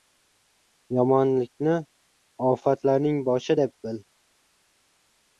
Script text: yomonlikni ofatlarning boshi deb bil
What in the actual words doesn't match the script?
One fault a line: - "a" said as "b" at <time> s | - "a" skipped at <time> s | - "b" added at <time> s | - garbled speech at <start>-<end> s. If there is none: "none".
none